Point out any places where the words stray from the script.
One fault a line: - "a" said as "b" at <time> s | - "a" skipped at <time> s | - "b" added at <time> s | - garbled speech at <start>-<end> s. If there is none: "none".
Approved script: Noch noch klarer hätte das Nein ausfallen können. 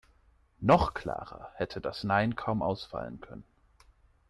- "noch" skipped at 0.9 s
- "kaum" added at 2.3 s